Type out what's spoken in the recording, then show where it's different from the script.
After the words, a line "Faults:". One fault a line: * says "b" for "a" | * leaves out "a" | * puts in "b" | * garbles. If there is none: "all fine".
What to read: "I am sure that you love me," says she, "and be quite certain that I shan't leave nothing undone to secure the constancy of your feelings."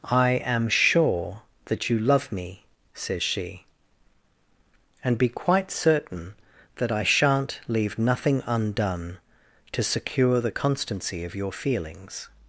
"I am sure that you love me," says she, "and be quite certain that I shan't leave nothing undone to secure the constancy of your feelings."
Faults:
all fine